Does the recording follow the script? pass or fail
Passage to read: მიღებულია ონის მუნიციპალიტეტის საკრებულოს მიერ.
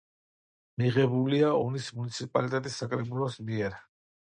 pass